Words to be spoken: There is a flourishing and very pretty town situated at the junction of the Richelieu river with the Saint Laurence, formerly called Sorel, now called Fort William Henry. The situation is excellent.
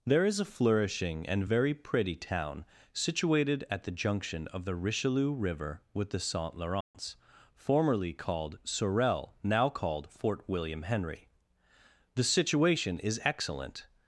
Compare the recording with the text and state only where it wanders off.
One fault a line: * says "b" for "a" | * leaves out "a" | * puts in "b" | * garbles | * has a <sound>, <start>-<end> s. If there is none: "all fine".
* has a dropout, 6.8-6.9 s